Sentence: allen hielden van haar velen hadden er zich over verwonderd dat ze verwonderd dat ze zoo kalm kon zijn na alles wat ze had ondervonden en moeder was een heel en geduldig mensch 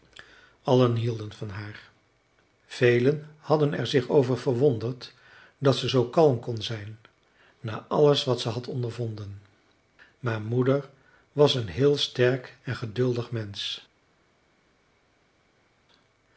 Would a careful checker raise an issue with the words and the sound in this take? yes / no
yes